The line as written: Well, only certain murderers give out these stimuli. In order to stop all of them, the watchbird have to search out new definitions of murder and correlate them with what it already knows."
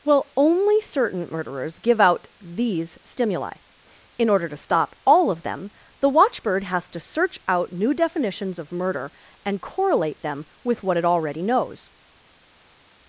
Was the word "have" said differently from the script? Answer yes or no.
yes